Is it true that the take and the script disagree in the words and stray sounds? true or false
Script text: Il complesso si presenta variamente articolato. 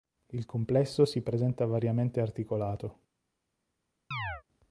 true